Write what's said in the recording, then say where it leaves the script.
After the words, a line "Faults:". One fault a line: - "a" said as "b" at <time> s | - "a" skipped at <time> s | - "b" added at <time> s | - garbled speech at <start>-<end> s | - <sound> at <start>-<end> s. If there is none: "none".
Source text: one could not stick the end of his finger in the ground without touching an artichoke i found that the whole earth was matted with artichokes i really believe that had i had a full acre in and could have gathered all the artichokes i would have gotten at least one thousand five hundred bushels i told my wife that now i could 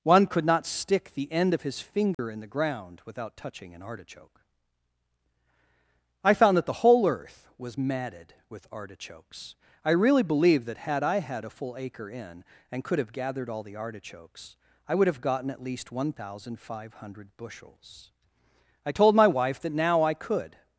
one could not stick the end of his finger in the ground without touching an artichoke i found that the whole earth was matted with artichokes i really believe that had i had a full acre in and could have gathered all the artichokes i would have gotten at least one thousand five hundred bushels i told my wife that now i could
Faults:
- dropout at 2.1-2.2 s